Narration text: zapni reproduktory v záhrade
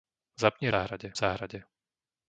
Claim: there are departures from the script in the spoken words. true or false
true